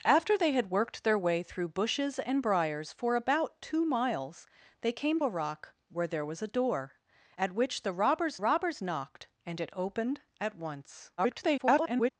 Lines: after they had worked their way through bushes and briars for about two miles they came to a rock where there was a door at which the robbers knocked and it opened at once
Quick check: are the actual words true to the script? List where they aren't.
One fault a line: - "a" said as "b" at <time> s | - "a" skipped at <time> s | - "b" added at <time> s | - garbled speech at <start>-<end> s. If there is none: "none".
- "to" skipped at 5.2 s
- "robbers" added at 8.4 s
- garbled speech at 11.2-12.1 s